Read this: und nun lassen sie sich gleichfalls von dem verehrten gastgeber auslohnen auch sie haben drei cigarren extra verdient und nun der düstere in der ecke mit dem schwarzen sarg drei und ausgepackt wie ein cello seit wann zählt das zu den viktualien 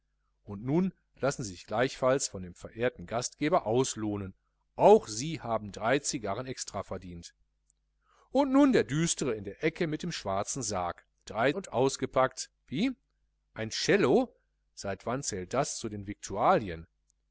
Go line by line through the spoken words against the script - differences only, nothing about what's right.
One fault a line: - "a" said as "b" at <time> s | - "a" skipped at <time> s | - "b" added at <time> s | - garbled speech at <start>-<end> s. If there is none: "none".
none